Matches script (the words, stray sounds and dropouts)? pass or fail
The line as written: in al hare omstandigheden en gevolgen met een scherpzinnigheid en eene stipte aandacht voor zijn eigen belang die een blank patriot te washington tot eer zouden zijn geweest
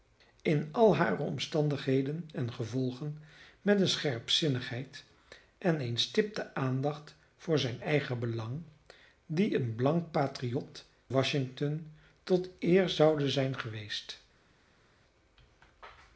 fail